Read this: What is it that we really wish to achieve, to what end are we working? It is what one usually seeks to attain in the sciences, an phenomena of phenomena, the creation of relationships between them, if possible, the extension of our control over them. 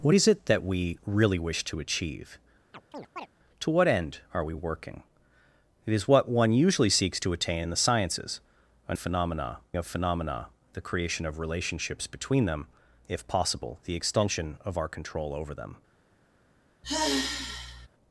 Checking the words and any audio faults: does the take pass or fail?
fail